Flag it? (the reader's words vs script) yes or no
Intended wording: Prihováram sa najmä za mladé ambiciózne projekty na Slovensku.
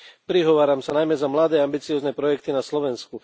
no